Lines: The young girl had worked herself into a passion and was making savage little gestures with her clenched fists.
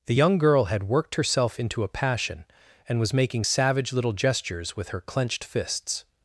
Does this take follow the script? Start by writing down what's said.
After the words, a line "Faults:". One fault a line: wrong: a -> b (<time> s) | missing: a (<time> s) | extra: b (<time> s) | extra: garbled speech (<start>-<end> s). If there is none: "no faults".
The young girl had worked herself into a passion and was making savage little gestures with her clenched fists.
Faults:
no faults